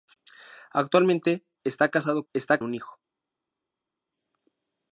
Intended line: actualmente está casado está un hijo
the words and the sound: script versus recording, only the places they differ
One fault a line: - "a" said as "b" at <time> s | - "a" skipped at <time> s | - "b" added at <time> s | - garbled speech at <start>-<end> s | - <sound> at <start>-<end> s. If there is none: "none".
none